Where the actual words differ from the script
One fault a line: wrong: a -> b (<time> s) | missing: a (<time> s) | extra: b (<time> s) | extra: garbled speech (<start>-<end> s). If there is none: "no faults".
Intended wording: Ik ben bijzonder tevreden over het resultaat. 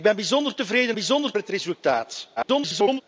wrong: over -> bijzonder (0.9 s)
extra: garbled speech (2.4-3.0 s)